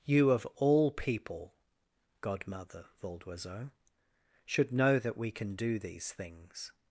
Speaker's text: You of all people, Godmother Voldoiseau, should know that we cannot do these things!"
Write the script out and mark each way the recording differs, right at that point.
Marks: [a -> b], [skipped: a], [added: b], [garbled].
You of all people, Godmother Voldoiseau, should know that we [cannot -> can] do these things!"